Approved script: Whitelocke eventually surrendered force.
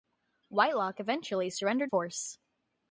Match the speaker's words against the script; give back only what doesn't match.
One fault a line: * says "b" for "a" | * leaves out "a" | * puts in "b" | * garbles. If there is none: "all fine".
all fine